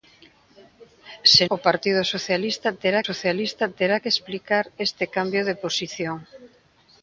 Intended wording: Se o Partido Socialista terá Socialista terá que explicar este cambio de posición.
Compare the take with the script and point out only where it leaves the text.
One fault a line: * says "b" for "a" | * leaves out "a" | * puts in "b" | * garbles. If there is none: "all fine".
all fine